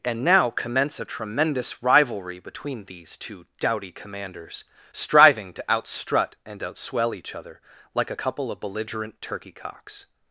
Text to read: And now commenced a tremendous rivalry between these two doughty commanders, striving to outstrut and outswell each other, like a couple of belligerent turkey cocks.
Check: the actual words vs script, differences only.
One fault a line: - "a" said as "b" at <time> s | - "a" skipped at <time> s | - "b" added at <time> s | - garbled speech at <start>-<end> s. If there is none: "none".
- "commenced" said as "commence" at 0.5 s